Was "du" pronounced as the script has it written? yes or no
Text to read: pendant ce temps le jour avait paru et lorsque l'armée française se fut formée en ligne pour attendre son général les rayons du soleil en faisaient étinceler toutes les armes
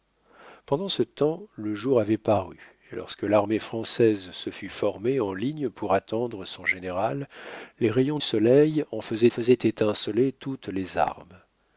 no